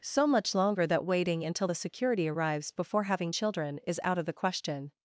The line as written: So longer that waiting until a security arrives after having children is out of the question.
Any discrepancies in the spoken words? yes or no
yes